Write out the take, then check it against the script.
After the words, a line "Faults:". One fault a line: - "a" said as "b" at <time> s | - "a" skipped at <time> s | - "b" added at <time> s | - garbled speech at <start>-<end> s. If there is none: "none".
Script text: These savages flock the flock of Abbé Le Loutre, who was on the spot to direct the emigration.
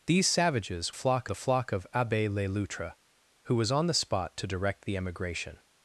These savages flock the flock of Abbé Le Loutre, who was on the spot to direct the emigration.
Faults:
none